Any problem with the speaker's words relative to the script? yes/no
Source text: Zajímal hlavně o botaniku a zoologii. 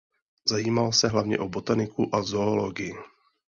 yes